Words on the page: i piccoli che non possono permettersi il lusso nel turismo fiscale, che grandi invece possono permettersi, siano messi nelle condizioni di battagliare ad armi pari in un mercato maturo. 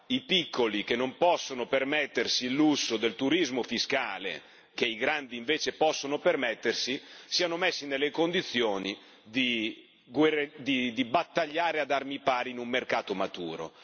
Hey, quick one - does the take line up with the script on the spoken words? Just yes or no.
no